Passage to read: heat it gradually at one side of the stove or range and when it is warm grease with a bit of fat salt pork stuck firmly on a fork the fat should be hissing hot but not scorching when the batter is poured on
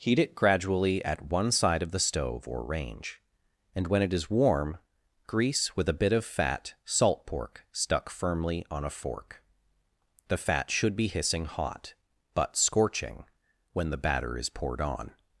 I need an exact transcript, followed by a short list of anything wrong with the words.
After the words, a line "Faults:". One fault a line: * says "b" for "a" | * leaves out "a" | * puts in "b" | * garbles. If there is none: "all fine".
heat it gradually at one side of the stove or range and when it is warm grease with a bit of fat salt pork stuck firmly on a fork the fat should be hissing hot but scorching when the batter is poured on
Faults:
* leaves out "not"